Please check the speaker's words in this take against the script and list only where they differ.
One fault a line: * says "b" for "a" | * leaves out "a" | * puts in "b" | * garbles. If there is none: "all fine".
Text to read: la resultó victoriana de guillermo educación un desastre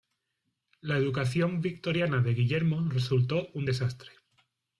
* says "educación" for "resultó"
* says "resultó" for "educación"